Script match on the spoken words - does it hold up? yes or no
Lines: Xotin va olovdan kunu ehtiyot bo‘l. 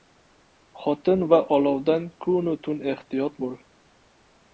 no